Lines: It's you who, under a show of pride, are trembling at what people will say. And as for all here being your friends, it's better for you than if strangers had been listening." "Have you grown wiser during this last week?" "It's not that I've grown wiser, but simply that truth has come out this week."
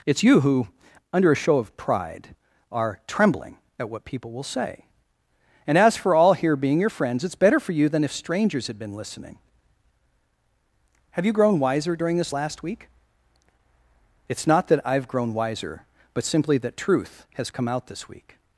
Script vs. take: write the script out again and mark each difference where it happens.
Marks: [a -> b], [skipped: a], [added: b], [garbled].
It's you who, under a show of pride, are trembling at what people will say. And as for all here being your friends, it's better for you than if strangers had been listening." "Have you grown wiser during this last week?" "It's not that I've grown wiser, but simply that truth has come out this week."